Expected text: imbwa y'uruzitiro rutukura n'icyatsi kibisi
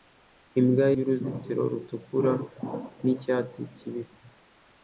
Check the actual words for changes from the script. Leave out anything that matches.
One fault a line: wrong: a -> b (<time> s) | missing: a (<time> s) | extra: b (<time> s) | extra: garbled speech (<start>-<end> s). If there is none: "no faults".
no faults